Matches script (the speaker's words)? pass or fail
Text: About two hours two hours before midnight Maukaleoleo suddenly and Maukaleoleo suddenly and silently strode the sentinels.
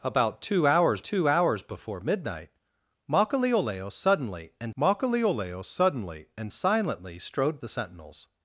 pass